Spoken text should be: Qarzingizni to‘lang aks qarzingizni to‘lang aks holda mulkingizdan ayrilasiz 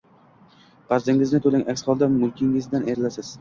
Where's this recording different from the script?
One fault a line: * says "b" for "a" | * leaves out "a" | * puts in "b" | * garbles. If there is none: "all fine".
* leaves out "qarzingizni to‘lang aks"